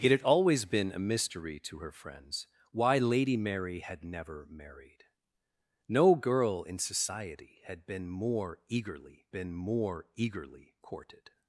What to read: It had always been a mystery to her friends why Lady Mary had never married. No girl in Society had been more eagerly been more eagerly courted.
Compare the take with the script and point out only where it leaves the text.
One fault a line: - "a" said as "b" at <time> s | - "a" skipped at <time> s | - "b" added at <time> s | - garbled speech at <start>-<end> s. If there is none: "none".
none